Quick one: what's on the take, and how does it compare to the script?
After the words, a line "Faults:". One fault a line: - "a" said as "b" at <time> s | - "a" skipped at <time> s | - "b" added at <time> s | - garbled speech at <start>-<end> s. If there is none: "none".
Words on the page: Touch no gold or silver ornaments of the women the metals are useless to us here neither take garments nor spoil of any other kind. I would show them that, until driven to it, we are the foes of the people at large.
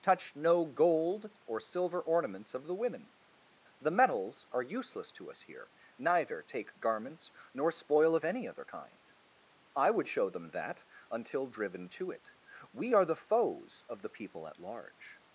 Touch no gold or silver ornaments of the women the metals are useless to us here neither take garments nor spoil of any other kind. I would show them that, until driven to it, we are the foes of the people at large.
Faults:
none